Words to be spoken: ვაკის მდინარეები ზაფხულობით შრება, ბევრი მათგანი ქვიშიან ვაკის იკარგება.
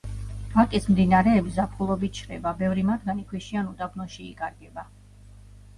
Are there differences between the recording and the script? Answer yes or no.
yes